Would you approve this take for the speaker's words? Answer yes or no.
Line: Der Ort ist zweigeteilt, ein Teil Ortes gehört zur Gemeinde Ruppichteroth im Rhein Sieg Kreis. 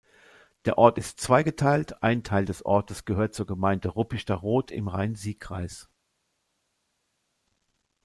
no